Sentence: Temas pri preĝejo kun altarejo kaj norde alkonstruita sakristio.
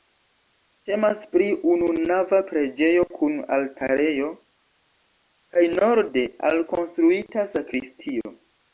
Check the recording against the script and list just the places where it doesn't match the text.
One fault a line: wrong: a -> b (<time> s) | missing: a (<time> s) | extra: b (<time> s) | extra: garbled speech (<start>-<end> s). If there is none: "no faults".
extra: ununava (1.7 s)